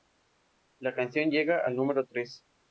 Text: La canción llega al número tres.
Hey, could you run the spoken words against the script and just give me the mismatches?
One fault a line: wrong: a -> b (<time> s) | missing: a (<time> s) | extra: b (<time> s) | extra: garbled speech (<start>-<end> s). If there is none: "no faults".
no faults